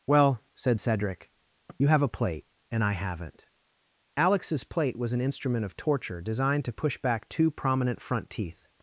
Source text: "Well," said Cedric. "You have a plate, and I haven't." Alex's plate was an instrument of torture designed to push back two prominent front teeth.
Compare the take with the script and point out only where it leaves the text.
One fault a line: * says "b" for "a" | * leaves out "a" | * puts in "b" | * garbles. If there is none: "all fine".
all fine